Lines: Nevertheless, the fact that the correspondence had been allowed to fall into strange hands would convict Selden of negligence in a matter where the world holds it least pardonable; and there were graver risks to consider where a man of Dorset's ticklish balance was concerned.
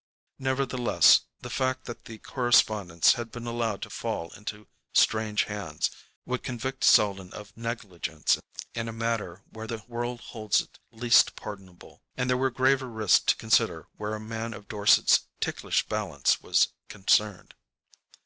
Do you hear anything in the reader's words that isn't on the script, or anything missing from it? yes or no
no